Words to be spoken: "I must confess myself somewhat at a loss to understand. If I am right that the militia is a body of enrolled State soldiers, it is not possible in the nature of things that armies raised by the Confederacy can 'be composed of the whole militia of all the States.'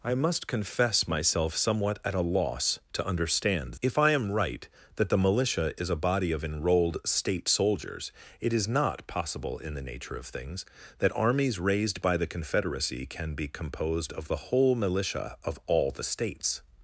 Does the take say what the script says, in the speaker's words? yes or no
yes